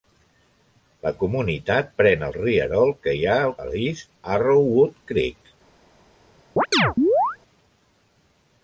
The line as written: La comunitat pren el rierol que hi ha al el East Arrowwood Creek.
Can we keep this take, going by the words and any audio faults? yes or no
no